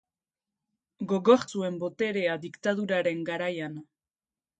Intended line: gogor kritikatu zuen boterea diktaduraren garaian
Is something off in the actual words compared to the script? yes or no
yes